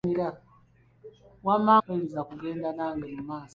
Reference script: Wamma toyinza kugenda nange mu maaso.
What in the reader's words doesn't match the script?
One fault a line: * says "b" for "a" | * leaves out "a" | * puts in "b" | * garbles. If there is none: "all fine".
all fine